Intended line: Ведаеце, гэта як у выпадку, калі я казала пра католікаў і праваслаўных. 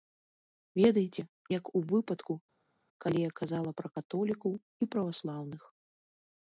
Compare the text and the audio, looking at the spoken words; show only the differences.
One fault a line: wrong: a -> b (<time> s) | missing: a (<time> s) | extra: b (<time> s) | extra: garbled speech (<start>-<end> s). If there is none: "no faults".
missing: гэта (1.2 s)